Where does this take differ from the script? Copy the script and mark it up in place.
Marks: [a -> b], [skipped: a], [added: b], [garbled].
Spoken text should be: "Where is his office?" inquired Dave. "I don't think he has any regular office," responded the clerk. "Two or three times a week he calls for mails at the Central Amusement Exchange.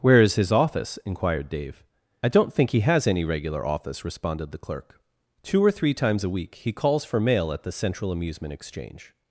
"Where is his office?" inquired Dave. "I don't think he has any regular office," responded the clerk. "Two or three times a week he calls for [mails -> mail] at the Central Amusement Exchange.